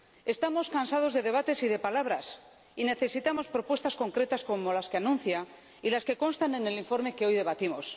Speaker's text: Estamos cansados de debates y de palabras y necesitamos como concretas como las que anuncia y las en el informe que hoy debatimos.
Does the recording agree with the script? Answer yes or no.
no